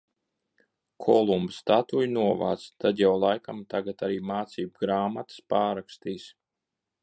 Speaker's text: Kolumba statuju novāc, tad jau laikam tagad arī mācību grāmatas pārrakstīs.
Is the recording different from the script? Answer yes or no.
no